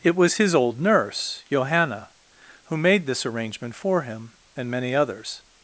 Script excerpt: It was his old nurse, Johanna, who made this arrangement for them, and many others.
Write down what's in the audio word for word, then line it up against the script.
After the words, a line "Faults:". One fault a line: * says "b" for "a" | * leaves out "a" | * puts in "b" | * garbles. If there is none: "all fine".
It was his old nurse, Johanna, who made this arrangement for him, and many others.
Faults:
* says "him" for "them"